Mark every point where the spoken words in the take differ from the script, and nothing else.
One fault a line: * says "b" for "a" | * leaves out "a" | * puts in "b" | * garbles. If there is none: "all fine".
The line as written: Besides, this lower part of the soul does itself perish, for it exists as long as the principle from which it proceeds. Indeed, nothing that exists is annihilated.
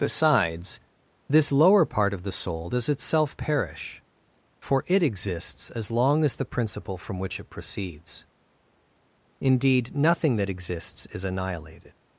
all fine